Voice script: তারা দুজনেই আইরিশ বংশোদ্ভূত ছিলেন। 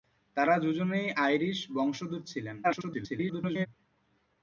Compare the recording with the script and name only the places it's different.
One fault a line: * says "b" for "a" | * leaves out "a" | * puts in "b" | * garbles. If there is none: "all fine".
* garbles